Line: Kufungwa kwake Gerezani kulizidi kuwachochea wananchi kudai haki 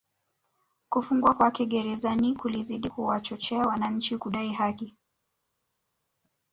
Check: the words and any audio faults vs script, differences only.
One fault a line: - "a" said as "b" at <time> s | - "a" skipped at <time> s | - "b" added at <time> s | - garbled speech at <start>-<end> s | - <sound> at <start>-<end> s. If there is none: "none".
none